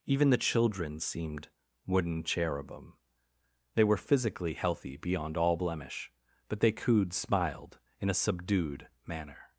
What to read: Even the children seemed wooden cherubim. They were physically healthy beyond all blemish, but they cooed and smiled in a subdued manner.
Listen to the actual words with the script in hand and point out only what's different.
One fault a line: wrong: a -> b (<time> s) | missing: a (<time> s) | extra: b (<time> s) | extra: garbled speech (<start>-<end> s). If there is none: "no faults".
missing: and (7.1 s)